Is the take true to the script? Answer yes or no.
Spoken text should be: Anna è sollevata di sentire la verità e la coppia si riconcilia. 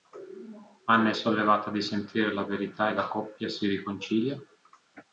yes